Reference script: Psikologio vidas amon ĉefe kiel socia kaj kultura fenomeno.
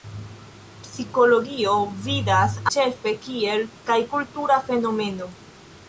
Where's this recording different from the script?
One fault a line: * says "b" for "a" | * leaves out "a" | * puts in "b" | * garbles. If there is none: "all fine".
* leaves out "amon"
* leaves out "socia"